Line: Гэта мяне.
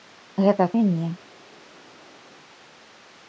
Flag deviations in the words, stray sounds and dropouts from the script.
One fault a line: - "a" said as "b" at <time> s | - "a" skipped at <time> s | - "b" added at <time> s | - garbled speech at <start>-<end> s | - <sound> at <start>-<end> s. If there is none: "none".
none